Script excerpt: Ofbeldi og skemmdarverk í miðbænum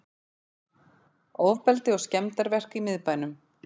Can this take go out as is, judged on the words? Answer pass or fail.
pass